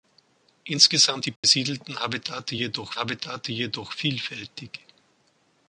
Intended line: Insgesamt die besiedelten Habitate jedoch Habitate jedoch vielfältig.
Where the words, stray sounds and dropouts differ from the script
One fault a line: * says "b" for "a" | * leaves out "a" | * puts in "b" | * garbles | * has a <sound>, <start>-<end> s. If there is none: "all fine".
* has a dropout, 1.4-1.4 s